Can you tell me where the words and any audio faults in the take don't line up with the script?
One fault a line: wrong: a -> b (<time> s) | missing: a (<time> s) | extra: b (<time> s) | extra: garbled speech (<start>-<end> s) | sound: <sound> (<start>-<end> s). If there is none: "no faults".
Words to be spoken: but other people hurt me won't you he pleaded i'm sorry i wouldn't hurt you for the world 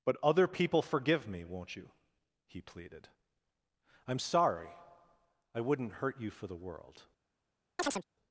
wrong: hurt -> forgive (0.8 s)
sound: chirp (7.8-8.0 s)